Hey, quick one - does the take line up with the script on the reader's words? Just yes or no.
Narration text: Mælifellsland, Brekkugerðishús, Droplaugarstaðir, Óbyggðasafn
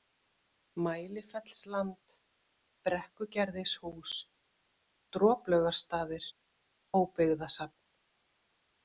yes